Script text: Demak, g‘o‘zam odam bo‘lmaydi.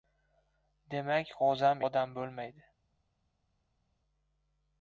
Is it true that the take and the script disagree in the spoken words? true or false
false